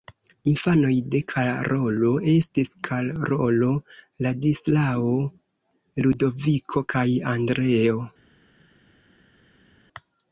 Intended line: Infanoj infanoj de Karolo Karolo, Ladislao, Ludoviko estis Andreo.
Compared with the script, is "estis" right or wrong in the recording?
wrong